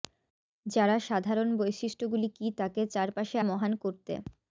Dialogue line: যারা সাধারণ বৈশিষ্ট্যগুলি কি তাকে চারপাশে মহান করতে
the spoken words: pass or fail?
pass